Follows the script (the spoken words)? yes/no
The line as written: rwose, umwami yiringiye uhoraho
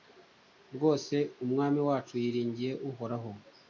no